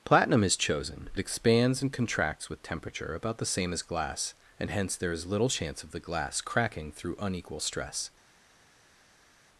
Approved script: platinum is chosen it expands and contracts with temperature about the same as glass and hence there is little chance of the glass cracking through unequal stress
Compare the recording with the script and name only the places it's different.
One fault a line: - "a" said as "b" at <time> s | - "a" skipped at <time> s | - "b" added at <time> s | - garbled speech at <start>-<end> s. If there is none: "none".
none